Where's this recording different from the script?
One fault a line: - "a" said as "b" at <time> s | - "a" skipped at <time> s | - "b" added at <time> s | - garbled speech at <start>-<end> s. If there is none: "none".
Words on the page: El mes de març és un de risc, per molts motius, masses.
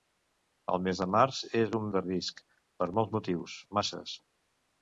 none